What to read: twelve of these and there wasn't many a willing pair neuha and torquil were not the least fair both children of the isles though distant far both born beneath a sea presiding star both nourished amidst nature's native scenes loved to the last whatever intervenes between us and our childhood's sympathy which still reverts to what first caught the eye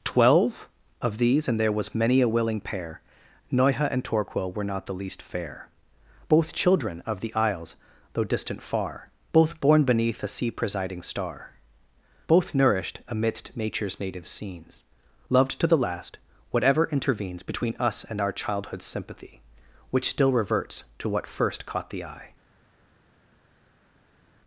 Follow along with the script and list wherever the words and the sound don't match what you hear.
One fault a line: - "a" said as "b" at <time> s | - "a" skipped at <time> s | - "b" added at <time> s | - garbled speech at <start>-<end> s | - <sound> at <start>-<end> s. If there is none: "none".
- "wasn't" said as "was" at 1.7 s